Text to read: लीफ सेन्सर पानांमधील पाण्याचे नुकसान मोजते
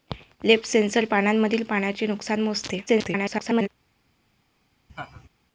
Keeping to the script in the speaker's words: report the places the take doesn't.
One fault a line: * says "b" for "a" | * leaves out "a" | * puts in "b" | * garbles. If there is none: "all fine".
* garbles